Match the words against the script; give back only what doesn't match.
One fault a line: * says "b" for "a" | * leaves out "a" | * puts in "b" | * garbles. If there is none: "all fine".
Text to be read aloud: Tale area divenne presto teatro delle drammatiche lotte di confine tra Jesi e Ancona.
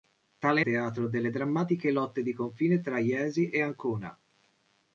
* leaves out "area divenne presto"